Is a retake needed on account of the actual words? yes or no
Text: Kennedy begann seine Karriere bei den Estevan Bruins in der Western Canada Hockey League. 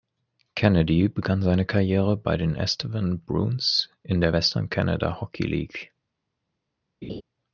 no